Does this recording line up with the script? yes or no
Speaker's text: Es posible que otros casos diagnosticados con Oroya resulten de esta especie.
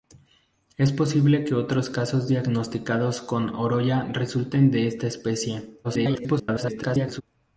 no